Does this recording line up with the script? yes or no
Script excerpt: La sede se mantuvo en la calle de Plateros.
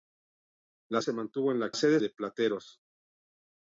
no